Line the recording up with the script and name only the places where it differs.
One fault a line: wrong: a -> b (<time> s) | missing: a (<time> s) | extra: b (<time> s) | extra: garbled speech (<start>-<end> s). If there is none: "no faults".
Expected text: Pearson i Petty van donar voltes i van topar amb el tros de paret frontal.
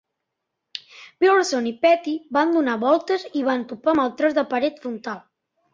no faults